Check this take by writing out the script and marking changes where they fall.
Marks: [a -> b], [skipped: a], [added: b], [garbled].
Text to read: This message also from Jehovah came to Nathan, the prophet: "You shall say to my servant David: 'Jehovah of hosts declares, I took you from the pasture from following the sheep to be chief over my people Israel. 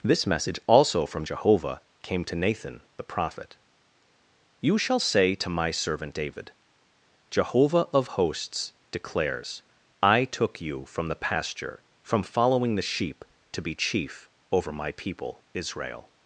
This message also from Jehovah came to Nathan, the prophet: "You shall say to my servant David: 'Jehovah of hosts declares, I took you from the pasture from following the sheep to be chief over my people Israel.